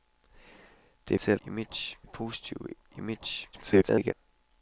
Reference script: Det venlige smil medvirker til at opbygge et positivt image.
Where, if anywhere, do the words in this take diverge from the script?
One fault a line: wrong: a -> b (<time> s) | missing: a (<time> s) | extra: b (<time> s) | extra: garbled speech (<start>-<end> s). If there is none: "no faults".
missing: venlige smil medvirker (1.2 s)
wrong: opbygge -> image (1.5 s)
extra: garbled speech (3.5-4.1 s)